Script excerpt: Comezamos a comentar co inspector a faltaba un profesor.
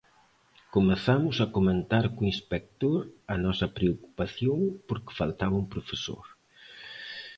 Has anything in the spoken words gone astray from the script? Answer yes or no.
yes